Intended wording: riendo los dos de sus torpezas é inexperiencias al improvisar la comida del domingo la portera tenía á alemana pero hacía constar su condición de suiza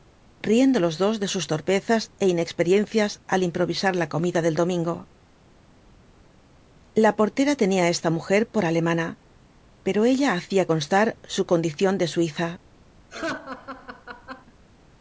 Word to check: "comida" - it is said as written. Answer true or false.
true